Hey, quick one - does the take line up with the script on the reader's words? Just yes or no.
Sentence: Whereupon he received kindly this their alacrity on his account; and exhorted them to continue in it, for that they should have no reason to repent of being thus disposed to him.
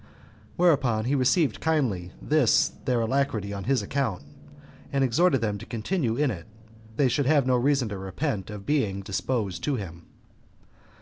no